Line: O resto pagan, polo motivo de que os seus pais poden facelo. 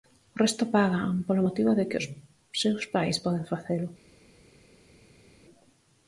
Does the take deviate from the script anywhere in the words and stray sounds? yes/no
no